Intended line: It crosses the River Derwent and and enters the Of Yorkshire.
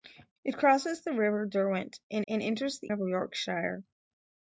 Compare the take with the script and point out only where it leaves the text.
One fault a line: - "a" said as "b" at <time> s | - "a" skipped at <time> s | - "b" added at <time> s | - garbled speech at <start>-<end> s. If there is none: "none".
none